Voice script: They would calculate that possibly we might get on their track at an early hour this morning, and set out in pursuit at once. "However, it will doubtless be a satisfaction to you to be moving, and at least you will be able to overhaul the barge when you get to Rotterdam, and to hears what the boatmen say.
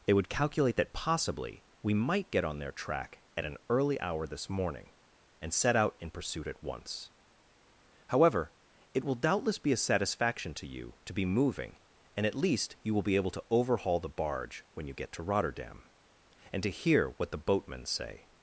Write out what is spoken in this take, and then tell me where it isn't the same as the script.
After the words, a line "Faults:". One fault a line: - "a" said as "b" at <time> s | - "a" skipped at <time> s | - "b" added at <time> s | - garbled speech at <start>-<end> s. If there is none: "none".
They would calculate that possibly we might get on their track at an early hour this morning, and set out in pursuit at once. "However, it will doubtless be a satisfaction to you to be moving, and at least you will be able to overhaul the barge when you get to Rotterdam, and to hear what the boatmen say.
Faults:
- "hears" said as "hear" at 16.7 s